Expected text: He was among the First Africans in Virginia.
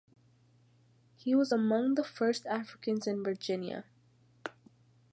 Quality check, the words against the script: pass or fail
pass